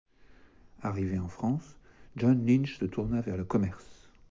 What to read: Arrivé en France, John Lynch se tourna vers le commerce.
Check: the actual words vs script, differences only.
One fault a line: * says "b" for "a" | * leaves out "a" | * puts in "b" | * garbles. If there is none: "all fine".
all fine